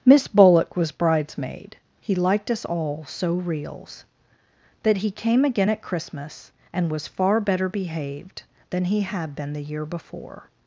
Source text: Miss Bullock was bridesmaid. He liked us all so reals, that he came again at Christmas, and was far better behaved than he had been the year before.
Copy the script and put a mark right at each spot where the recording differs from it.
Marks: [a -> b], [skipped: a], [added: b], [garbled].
Miss Bullock was bridesmaid. He liked us all so reals, that he came again at Christmas, and was far better behaved than he had been the year before.